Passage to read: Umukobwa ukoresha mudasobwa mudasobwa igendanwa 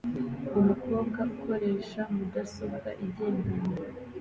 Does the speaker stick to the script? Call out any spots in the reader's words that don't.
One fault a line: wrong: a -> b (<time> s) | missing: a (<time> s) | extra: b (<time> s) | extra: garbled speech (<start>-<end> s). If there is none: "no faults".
missing: mudasobwa (2.9 s)